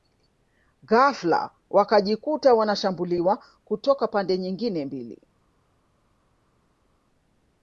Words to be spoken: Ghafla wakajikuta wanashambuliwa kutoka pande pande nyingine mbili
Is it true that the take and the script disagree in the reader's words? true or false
true